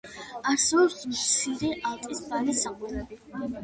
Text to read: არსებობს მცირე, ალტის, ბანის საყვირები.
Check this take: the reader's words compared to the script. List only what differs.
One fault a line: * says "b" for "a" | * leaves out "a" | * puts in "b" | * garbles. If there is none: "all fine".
all fine